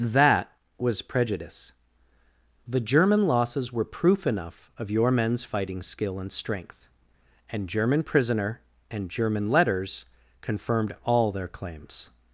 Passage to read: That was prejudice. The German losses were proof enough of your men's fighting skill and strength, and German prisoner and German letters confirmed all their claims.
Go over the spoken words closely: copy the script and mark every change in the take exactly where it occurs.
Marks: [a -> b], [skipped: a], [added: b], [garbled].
That was prejudice. The German losses were proof enough of your men's fighting skill and strength, and German prisoner and German letters confirmed all their claims.